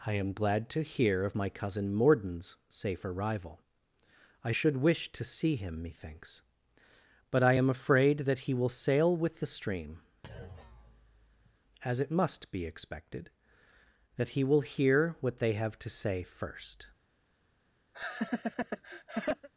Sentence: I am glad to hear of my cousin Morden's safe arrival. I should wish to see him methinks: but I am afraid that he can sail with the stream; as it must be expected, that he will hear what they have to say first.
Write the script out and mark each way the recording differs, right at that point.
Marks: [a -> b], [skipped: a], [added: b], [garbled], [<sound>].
I am glad to hear of my cousin Morden's safe arrival. I should wish to see him methinks: but I am afraid that he [can -> will] sail with the stream; [thud] as it must be expected, that he will hear what they have to say first. [laugh]